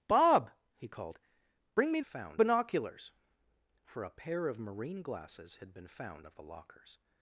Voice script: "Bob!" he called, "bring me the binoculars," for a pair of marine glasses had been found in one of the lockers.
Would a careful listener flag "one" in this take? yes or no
yes